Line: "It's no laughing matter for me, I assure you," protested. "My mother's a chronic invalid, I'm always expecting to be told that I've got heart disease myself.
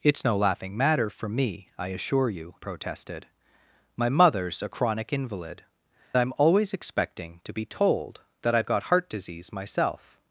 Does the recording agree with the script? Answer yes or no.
yes